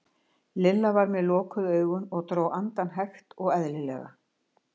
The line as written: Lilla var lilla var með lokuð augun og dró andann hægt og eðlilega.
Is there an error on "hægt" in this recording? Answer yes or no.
no